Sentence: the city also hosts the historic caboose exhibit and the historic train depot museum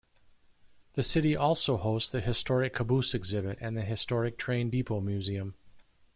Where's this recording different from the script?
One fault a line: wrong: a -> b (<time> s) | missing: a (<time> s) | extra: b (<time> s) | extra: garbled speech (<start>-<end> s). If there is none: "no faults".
no faults